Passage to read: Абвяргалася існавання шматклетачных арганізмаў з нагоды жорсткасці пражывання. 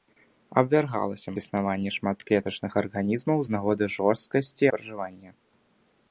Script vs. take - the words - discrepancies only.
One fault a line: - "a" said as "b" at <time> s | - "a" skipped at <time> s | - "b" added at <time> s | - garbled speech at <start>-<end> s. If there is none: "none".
none